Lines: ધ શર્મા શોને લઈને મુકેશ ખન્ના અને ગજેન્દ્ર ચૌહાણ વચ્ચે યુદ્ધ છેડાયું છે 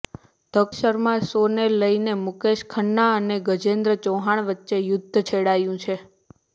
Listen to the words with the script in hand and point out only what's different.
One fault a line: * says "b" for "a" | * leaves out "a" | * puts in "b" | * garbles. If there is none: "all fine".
all fine